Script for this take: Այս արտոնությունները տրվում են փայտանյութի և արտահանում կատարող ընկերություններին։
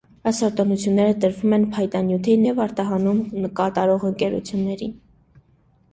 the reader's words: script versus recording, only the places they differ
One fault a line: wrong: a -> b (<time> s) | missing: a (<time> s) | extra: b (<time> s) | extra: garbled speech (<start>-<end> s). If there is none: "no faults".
no faults